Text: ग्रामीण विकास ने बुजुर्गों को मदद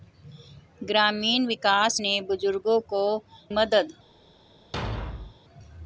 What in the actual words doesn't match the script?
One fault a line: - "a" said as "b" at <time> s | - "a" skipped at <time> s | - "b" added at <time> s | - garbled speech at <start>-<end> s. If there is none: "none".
none